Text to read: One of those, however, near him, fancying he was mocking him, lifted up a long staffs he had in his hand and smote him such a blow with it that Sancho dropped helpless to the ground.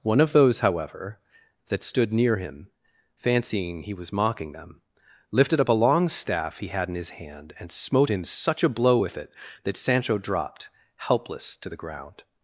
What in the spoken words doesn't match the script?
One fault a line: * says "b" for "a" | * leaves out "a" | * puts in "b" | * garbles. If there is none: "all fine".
* puts in "that stood"
* says "them" for "him"
* says "staff" for "staffs"